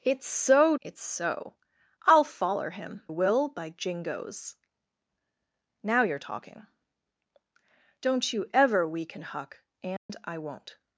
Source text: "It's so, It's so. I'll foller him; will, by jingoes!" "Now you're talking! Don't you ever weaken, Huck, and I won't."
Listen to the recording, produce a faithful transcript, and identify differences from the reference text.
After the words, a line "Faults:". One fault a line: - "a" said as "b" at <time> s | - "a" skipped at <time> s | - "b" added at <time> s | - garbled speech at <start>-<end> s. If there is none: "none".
"It's so, It's so. I'll foller him; will, by jingoes!" "Now you're talking! Don't you ever weaken, Huck, and I won't."
Faults:
none